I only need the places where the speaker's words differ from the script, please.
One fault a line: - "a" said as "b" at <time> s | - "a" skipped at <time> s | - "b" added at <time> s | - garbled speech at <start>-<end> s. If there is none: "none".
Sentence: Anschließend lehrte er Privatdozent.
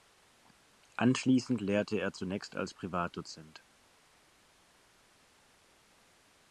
- "zunächst als" added at 2.1 s